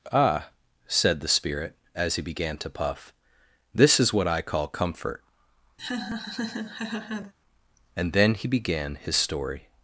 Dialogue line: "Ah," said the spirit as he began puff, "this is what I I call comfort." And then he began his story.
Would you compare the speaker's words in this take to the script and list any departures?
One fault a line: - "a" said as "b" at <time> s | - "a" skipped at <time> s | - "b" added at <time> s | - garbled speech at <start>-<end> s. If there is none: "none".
- "to" added at 2.6 s
- "I" skipped at 4.4 s